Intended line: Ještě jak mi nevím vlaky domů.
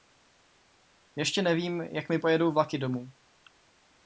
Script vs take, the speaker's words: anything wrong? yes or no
yes